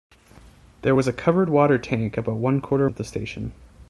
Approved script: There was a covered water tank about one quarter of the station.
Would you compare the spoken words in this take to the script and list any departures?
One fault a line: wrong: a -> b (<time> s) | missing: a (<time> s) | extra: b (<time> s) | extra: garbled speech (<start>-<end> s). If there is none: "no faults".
no faults